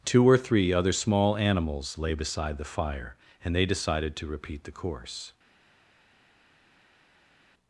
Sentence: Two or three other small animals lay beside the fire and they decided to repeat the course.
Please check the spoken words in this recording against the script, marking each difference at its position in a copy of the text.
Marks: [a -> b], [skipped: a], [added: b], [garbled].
Two or three other small animals lay beside the fire and they decided to repeat the course.